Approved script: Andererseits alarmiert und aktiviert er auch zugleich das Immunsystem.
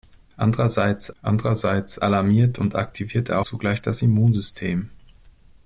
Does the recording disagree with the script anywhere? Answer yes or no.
yes